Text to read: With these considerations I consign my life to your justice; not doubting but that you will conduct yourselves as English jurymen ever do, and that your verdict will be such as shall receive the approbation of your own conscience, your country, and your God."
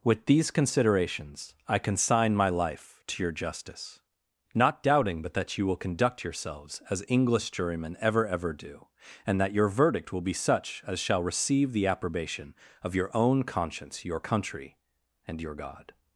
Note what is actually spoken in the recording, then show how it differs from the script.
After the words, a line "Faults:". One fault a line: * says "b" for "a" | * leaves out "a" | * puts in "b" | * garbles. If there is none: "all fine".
With these considerations I consign my life to your justice; not doubting but that you will conduct yourselves as English jurymen ever ever do, and that your verdict will be such as shall receive the approbation of your own conscience, your country, and your God."
Faults:
* puts in "ever"